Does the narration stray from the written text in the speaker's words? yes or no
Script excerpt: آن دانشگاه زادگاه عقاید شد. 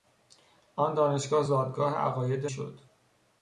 no